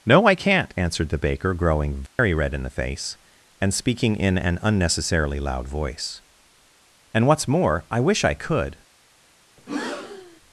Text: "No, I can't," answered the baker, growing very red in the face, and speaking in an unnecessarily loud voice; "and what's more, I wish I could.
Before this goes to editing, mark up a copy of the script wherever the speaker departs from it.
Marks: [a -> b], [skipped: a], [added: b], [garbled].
"No, I can't," answered the baker, growing very red in the face, and speaking in an unnecessarily loud voice; "and what's more, I wish I could.